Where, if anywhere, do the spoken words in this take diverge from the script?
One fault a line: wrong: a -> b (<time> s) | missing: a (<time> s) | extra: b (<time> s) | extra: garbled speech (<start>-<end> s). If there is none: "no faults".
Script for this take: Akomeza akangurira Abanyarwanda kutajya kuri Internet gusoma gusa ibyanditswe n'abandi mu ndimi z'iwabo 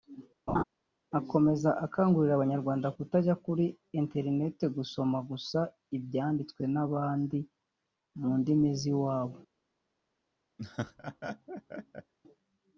no faults